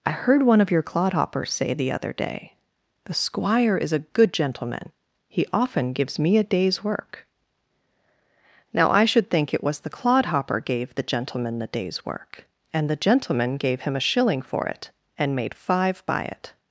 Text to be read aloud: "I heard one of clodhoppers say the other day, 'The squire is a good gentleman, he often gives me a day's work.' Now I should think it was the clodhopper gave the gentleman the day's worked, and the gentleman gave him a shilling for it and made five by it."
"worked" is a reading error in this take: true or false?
true